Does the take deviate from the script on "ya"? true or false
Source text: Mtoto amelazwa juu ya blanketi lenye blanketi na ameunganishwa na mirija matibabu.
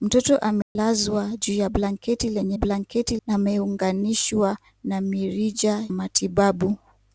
false